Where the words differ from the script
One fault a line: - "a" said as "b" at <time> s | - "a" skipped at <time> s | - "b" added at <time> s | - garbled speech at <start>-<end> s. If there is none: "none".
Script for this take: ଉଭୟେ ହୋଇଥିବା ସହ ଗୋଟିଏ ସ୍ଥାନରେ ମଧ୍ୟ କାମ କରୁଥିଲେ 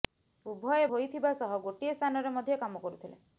none